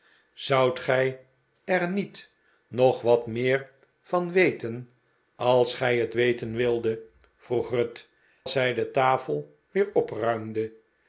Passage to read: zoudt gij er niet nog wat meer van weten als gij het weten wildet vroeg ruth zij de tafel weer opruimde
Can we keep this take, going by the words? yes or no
yes